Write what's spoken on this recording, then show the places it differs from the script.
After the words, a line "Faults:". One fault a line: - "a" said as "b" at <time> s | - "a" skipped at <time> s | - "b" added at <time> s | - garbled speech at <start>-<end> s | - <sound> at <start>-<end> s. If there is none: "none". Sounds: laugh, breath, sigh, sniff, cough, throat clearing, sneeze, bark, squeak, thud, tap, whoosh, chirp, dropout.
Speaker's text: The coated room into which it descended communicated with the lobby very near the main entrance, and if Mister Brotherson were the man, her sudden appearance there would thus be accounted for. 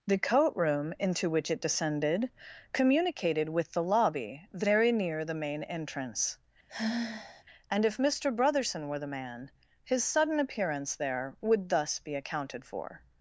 The coat room into which it descended communicated with the lobby very near the main entrance, and if Mister Brotherson were the man, his sudden appearance there would thus be accounted for.
Faults:
- "coated" said as "coat" at 0.2 s
- sigh at 6.7-7.4 s
- "her" said as "his" at 9.8 s